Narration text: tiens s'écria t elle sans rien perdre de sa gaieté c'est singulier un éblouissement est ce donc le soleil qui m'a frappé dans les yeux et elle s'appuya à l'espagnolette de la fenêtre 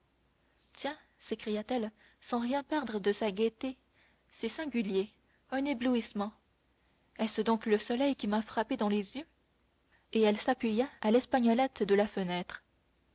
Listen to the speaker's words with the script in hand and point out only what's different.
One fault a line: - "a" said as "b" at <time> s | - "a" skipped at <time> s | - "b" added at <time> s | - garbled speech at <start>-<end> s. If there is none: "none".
none